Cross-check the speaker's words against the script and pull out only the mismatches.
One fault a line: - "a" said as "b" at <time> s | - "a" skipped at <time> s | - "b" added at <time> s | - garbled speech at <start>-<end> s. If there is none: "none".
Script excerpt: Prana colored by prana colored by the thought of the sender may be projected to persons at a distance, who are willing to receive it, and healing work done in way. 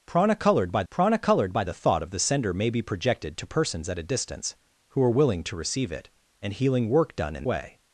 none